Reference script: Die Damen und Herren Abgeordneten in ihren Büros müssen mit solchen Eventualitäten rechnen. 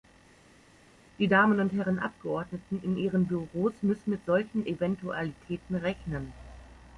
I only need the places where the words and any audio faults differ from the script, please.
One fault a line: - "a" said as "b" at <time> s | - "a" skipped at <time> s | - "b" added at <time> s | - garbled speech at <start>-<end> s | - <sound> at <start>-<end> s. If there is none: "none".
none